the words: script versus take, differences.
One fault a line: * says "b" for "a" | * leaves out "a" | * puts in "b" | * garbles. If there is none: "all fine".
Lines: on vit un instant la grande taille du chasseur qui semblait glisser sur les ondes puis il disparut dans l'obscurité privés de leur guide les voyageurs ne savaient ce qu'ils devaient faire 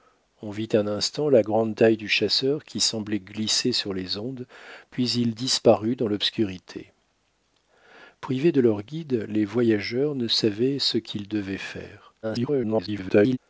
* garbles